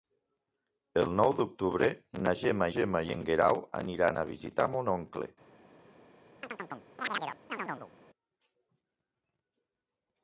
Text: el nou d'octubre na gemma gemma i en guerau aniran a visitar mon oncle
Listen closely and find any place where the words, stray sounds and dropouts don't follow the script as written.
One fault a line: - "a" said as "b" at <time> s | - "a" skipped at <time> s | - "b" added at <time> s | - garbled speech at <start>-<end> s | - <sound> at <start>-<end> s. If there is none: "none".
- chirp at 6.4-7.9 s